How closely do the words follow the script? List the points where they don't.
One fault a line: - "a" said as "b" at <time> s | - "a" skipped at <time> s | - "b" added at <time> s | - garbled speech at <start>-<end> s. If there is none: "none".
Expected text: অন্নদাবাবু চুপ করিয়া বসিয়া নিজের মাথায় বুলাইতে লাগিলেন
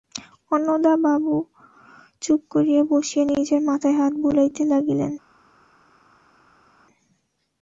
- "হাত" added at 4.0 s